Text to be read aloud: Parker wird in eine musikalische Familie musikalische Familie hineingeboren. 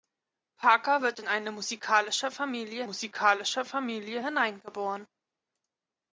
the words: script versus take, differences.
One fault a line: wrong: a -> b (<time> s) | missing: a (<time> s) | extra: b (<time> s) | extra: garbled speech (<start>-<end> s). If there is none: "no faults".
no faults